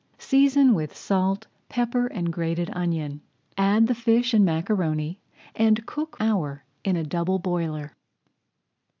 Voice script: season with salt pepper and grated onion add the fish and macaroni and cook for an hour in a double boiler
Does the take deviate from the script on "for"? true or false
true